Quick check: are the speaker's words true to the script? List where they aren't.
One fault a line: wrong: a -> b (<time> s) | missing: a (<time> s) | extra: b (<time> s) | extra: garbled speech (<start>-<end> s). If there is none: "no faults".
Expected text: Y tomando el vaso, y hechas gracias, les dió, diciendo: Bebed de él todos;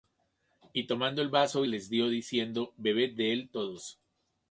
missing: y hechas gracias (1.6 s)